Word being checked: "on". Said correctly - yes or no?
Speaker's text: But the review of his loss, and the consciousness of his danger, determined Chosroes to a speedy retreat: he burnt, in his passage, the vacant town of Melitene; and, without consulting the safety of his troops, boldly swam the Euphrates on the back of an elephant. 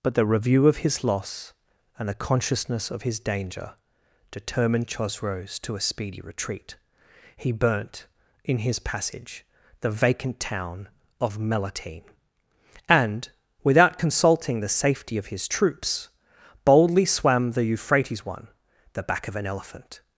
no